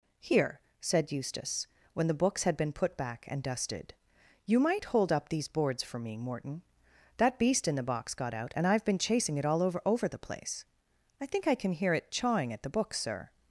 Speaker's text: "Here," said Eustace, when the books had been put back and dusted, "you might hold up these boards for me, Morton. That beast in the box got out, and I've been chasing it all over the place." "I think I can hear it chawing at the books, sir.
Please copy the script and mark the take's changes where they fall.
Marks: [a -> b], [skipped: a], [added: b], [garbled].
"Here," said Eustace, when the books had been put back and dusted, "you might hold up these boards for me, Morton. That beast in the box got out, and I've been chasing it all over [added: over] the place." "I think I can hear it chawing at the books, sir.